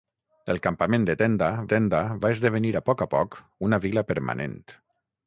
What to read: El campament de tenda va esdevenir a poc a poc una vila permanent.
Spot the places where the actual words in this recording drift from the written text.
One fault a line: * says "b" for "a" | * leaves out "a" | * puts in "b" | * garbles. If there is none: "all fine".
* puts in "tenda"